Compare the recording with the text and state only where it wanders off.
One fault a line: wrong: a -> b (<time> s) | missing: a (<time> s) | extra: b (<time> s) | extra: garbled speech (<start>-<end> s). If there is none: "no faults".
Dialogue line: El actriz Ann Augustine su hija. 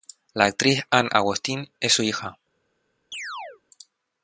wrong: El -> La (0.3 s)
extra: es (1.8 s)